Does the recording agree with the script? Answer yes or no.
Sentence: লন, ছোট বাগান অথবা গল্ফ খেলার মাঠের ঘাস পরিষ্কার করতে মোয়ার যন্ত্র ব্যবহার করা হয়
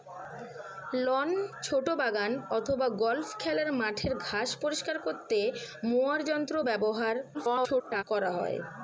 no